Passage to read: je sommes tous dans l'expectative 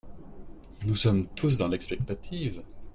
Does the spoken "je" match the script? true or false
false